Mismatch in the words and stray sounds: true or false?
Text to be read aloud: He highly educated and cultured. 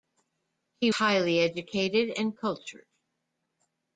false